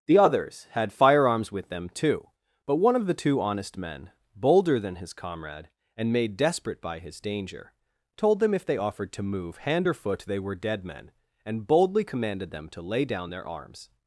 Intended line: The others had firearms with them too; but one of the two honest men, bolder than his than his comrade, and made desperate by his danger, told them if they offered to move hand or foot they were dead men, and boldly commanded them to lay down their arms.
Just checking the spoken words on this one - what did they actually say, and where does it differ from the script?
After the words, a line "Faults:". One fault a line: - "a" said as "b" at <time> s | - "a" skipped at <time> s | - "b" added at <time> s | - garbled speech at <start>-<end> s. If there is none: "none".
The others had firearms with them too; but one of the two honest men, bolder than his comrade, and made desperate by his danger, told them if they offered to move hand or foot they were dead men, and boldly commanded them to lay down their arms.
Faults:
- "than his" skipped at 5.1 s